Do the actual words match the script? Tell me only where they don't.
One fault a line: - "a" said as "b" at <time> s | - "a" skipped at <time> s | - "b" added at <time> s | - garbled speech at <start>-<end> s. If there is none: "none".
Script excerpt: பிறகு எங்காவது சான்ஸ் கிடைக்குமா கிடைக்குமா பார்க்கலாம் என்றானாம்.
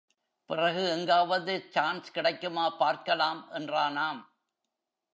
- "கிடைக்குமா" skipped at 2.7 s